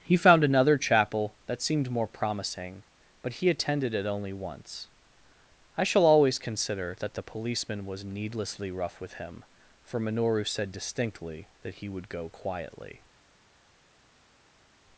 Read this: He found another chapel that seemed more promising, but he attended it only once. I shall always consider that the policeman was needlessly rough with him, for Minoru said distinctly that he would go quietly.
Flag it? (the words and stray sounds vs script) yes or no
no